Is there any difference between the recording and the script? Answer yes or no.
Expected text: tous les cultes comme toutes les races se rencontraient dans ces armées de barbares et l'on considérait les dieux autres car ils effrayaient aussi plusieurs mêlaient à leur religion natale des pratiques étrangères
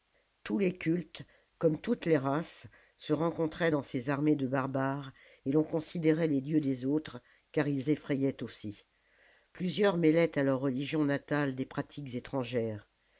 yes